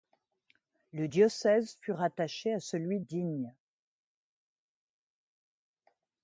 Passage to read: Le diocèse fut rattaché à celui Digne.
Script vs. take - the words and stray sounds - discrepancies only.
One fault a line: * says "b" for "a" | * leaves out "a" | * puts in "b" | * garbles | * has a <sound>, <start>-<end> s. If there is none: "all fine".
all fine